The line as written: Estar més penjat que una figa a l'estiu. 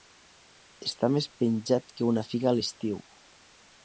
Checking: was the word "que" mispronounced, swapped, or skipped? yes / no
no